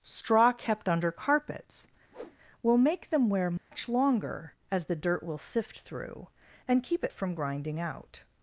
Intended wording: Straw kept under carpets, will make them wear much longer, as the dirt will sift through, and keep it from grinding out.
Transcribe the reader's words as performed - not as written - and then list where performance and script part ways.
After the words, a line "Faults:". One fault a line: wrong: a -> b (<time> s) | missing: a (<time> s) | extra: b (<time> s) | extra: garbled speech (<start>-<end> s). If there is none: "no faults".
Straw kept under carpets, will make them wear much longer, as the dirt will sift through, and keep it from grinding out.
Faults:
no faults